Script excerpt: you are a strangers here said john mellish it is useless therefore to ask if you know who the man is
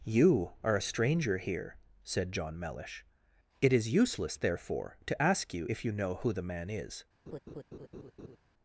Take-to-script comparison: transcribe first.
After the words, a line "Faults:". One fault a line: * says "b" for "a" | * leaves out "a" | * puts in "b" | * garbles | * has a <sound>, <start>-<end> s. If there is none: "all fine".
you are a stranger here said john mellish it is useless therefore to ask you if you know who the man is
Faults:
* says "stranger" for "strangers"
* puts in "you"
* has a laugh, 7.3-8.4 s